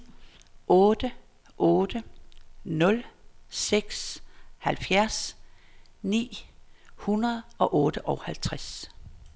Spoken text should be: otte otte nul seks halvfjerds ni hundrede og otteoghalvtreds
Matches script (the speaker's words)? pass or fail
pass